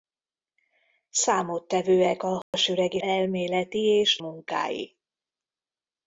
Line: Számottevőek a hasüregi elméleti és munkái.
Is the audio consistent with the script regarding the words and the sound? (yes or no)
no